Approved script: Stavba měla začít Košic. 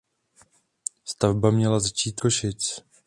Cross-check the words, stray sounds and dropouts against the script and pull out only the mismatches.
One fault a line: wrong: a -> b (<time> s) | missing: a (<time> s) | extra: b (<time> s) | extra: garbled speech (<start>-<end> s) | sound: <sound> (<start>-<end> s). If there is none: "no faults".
no faults